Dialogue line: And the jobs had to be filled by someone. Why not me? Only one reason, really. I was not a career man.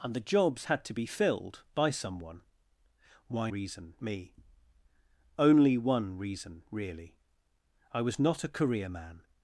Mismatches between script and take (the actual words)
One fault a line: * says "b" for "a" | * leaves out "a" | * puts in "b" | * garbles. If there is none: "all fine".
* says "reason" for "not"